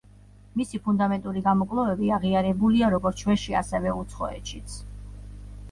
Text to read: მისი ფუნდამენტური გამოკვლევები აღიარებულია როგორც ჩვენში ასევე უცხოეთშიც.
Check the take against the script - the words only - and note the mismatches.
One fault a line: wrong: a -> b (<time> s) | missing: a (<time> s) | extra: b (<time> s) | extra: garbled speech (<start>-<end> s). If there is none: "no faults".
no faults